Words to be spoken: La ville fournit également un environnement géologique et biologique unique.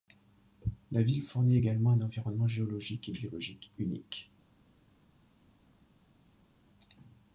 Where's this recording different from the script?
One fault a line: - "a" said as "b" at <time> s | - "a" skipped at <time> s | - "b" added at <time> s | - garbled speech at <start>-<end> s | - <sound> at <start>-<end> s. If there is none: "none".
none